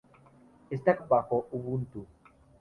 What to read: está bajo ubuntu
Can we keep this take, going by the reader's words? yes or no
yes